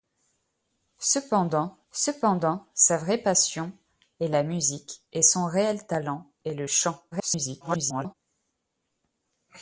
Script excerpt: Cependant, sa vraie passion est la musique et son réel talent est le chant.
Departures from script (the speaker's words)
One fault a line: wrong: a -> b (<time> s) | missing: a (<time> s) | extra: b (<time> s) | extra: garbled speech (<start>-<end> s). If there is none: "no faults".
extra: cependant (1.9 s)
extra: garbled speech (7.1-8.1 s)